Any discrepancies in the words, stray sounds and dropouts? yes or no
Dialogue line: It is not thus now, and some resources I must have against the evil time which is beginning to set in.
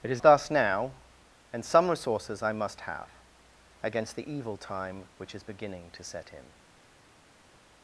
yes